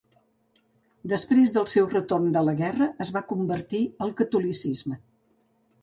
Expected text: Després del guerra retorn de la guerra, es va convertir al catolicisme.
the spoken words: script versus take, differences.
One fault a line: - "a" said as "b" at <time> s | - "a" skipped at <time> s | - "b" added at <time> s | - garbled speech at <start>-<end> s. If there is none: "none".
- "guerra" said as "seu" at 1.8 s